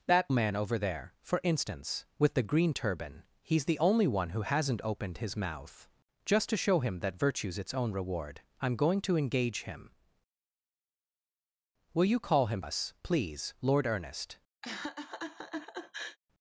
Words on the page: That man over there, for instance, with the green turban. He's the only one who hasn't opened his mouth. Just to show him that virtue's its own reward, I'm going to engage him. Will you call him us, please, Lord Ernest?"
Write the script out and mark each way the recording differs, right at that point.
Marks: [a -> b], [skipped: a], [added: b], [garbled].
That man over there, for instance, with the green turban. He's the only one who hasn't opened his mouth. Just to show him that virtue's its own reward, I'm going to engage him. Will you call him us, please, Lord Ernest?"